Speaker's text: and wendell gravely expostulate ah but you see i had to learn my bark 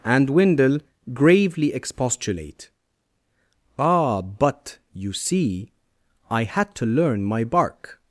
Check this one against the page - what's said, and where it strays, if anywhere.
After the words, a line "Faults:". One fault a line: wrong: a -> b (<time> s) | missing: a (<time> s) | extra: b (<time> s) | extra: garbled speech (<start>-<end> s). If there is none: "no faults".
and wendell gravely expostulate ah but you see i had to learn my bark
Faults:
no faults